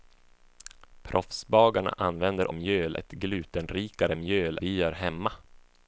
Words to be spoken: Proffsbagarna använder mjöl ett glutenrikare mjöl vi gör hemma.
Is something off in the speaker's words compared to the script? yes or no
no